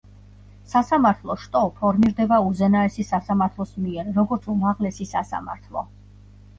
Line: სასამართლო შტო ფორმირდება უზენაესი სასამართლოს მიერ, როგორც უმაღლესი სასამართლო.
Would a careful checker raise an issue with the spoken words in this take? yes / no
no